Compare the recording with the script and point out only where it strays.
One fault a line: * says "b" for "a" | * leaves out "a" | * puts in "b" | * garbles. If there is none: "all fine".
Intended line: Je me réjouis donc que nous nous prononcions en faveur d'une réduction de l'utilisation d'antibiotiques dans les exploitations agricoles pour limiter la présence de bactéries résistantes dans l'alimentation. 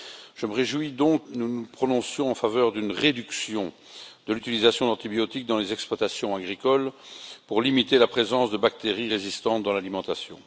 * leaves out "que"